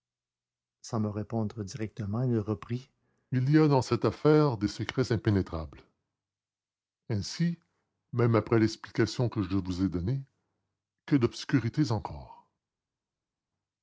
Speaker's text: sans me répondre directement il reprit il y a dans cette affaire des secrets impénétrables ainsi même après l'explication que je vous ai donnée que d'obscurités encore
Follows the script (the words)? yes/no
yes